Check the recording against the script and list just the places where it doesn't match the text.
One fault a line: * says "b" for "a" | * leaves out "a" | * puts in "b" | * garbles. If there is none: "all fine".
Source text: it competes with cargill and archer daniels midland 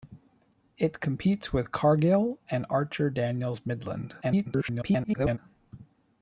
* garbles